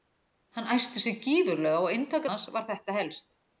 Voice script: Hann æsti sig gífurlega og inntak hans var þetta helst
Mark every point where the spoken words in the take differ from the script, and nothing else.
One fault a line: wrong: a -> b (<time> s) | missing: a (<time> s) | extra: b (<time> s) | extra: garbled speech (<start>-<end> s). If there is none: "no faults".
no faults